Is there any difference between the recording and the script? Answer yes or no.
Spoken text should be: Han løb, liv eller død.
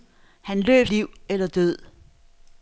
no